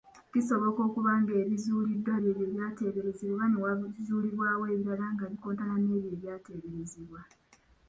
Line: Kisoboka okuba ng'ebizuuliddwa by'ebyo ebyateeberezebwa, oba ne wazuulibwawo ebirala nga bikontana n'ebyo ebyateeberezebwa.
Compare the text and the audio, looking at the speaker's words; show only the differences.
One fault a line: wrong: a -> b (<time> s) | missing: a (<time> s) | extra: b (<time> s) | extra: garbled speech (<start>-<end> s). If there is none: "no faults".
no faults